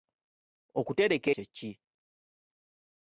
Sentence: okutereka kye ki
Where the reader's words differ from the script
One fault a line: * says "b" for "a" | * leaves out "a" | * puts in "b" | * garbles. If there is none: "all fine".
all fine